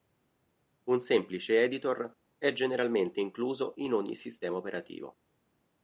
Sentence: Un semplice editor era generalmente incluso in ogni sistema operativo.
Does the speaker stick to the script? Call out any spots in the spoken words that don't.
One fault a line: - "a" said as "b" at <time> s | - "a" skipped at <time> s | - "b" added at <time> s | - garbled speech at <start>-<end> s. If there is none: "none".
- "era" said as "è" at 2.4 s